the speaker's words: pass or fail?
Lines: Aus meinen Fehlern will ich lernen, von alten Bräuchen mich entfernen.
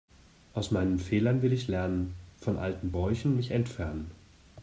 pass